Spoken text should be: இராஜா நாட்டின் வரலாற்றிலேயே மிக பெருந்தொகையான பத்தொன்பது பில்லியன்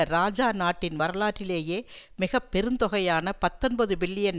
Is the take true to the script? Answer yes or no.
yes